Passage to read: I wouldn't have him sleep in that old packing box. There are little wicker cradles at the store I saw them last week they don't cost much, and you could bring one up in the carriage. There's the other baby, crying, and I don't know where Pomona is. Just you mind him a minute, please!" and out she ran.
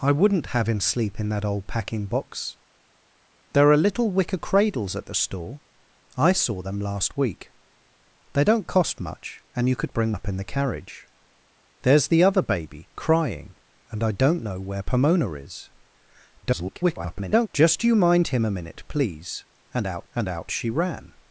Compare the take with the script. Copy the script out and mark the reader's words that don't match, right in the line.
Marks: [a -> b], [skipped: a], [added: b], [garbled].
I wouldn't have him sleep in that old packing box. There are little wicker cradles at the store I saw them last week they don't cost much, and you could bring [skipped: one] up in the carriage. There's the other baby, crying, and I don't know where Pomona is. [garbled] Just you mind him a minute, please!" and out [added: and out] she ran.